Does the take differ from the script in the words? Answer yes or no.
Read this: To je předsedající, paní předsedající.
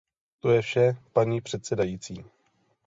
yes